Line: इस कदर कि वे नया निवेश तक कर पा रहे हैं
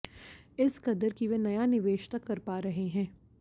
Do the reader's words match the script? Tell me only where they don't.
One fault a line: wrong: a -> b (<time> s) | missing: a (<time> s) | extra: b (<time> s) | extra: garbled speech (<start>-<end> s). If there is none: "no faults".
no faults